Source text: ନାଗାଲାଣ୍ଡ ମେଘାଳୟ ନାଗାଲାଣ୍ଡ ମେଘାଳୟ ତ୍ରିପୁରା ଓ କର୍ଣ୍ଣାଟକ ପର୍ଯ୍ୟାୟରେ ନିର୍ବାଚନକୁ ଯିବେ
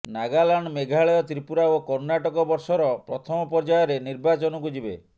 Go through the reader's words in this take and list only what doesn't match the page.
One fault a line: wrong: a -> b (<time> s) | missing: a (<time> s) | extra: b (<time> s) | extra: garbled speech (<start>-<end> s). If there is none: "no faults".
missing: ନାଗାଲାଣ୍ଡ ମେଘାଳୟ (1.2 s)
extra: ବର୍ଷର ପ୍ରଥମ (2.5 s)